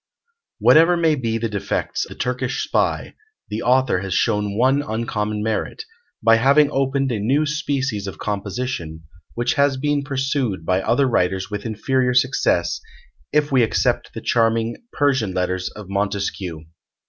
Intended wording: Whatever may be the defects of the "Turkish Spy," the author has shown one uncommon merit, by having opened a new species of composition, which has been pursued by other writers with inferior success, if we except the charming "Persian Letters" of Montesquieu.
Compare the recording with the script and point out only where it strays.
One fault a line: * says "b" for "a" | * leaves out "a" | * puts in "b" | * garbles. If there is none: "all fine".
* leaves out "of"